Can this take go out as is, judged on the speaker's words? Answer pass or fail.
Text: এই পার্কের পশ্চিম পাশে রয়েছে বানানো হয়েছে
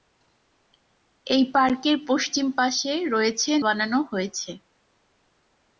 pass